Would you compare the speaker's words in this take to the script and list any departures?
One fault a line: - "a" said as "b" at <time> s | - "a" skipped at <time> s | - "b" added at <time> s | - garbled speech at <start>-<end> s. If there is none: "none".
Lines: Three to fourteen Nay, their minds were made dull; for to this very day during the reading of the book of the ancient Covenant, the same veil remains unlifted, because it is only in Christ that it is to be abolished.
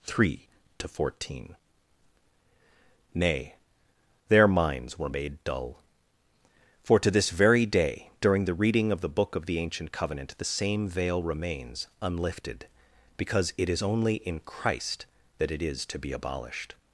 none